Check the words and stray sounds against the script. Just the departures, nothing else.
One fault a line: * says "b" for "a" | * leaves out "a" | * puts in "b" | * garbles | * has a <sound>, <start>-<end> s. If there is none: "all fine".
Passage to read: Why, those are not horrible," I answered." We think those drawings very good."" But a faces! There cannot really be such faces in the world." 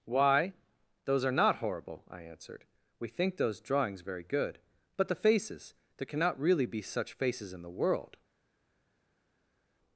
* says "the" for "a"